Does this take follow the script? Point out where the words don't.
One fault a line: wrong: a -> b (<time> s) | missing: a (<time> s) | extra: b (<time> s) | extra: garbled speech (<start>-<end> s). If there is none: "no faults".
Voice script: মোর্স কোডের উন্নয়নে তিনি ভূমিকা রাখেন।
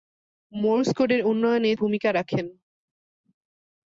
missing: তিনি (1.7 s)